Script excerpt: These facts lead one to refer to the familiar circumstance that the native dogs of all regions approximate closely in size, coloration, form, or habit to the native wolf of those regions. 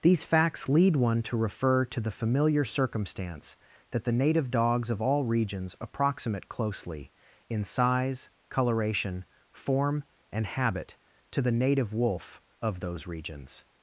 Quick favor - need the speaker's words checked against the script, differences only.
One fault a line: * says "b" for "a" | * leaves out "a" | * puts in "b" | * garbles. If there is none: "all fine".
* says "and" for "or"